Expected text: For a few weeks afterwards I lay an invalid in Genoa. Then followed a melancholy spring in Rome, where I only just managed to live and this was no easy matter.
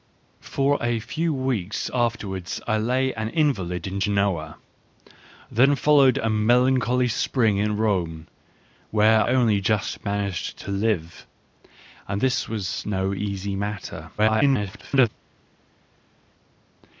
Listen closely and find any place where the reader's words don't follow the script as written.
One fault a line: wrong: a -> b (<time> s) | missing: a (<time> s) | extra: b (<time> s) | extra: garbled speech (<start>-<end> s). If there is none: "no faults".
missing: I (9.2 s)
extra: garbled speech (14.2-15.1 s)